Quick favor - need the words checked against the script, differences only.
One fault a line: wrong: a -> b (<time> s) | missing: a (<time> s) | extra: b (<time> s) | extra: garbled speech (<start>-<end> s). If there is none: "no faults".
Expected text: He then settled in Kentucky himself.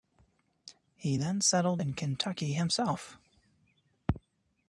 no faults